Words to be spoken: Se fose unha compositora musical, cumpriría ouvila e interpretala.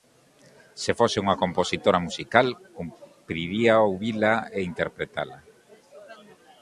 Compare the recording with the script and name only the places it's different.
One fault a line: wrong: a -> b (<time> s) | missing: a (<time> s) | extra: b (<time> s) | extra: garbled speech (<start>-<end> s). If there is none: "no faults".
no faults